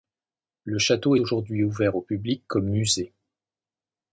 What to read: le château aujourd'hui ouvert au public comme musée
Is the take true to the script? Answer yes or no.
yes